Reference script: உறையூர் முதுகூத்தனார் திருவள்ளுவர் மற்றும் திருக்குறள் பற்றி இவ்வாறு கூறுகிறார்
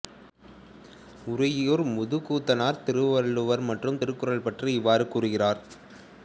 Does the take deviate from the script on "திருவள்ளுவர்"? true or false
false